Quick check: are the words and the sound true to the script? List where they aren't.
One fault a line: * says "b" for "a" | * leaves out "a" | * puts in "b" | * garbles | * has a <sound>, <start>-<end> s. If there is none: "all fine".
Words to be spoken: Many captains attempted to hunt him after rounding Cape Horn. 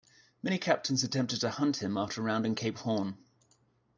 all fine